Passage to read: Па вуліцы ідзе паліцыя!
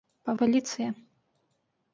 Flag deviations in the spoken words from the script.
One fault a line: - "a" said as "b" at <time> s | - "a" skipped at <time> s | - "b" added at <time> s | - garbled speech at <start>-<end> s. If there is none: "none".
- "вуліцы ідзе" skipped at 0.3 s